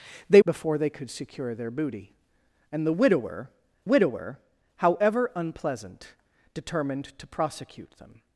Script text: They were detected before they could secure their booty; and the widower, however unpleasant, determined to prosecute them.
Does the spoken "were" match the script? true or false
false